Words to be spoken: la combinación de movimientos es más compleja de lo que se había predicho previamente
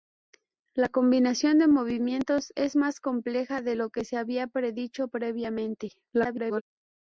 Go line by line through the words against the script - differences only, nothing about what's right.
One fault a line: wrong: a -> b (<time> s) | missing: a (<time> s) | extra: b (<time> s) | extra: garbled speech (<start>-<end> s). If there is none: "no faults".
extra: garbled speech (6.1-6.6 s)